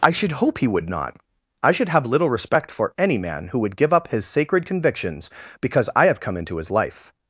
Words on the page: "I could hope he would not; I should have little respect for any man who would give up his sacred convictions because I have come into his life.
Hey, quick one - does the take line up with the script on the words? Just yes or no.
no